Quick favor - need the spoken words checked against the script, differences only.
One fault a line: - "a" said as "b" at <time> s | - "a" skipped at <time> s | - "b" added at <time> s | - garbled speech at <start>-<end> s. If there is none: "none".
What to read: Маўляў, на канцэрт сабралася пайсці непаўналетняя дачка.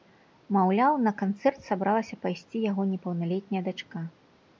- "яго" added at 2.7 s